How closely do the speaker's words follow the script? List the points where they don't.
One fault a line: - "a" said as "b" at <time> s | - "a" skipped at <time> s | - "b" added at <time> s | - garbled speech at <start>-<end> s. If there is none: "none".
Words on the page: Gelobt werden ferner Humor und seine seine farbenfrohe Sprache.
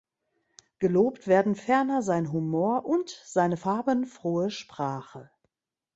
- "sein" added at 2.0 s
- "seine" skipped at 3.5 s